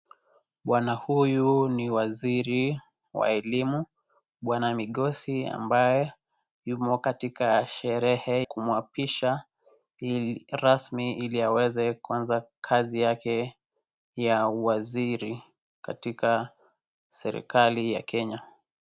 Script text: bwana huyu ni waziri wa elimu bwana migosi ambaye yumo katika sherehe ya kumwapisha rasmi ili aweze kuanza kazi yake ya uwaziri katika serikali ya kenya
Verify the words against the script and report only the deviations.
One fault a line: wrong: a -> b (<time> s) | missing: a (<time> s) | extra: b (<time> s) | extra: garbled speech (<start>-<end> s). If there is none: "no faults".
missing: ya (8.5 s)